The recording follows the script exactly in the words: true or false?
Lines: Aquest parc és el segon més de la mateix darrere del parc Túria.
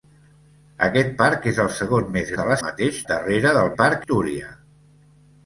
true